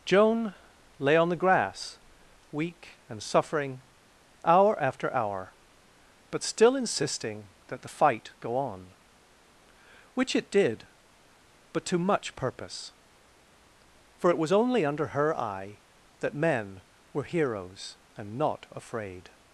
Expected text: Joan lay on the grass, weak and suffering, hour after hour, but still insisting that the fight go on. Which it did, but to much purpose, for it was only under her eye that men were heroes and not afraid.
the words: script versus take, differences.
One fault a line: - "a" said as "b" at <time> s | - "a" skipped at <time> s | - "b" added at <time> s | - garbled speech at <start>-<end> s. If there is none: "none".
none